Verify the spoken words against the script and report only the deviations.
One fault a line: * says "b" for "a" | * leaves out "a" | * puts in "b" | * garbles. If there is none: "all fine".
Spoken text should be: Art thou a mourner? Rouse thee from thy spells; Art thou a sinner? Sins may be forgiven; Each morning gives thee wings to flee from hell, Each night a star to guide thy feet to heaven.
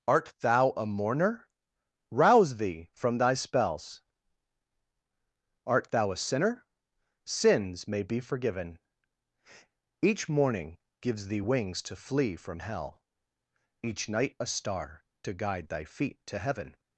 all fine